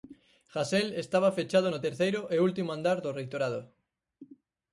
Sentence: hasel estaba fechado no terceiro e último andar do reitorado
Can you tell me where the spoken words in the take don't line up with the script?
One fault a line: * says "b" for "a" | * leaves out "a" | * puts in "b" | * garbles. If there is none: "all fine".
all fine